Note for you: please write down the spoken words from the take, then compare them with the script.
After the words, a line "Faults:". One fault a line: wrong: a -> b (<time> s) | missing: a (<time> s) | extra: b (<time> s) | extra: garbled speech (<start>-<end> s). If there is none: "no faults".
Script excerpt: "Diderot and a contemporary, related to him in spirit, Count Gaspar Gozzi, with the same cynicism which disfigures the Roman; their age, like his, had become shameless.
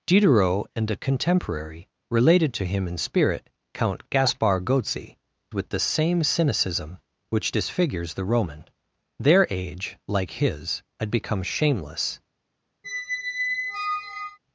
"Diderot and a contemporary, related to him in spirit, Count Gaspar Gozzi, with the same cynicism which disfigures the Roman; their age, like his, had become shameless.
Faults:
no faults